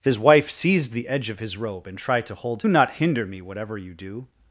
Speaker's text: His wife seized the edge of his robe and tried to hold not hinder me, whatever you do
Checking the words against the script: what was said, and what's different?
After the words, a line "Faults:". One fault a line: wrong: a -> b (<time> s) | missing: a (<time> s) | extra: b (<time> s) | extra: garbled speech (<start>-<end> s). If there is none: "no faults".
His wife seized the edge of his robe and tried to hold not hinder me, whatever you do
Faults:
no faults